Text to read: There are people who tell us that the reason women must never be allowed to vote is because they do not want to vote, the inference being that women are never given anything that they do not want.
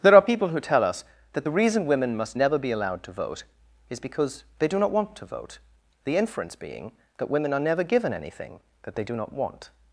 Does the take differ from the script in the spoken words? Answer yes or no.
no